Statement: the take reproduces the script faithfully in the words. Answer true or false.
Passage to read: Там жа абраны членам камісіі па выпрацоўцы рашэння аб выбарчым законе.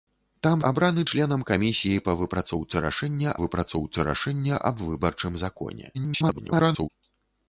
false